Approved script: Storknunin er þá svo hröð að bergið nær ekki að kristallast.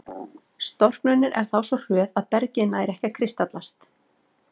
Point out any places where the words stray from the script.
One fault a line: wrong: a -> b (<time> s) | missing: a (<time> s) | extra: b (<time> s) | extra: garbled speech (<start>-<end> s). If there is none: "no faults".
no faults